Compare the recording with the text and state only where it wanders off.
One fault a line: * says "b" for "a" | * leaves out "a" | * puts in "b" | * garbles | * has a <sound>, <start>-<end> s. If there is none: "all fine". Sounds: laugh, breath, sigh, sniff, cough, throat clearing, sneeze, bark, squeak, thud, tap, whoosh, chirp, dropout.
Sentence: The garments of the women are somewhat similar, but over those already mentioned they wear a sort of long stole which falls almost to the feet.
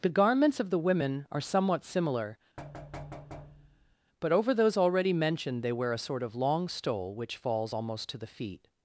* has a thud, 2.6-4.0 s